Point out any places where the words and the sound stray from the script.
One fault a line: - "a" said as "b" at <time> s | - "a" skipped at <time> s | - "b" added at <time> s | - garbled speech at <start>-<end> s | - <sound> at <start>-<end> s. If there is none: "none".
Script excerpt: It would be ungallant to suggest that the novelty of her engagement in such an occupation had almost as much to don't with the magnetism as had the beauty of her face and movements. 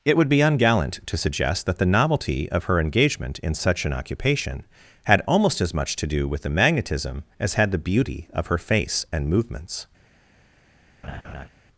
- "don't" said as "do" at 6.1 s
- laugh at 11.0-11.5 s